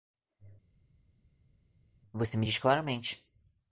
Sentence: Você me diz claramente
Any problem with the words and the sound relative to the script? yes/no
no